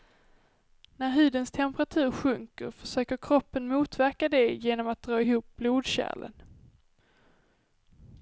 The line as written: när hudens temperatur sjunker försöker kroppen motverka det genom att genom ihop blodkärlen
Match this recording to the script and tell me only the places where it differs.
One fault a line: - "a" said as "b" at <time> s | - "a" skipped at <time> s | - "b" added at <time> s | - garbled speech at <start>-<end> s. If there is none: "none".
- "genom" said as "dra" at 5.0 s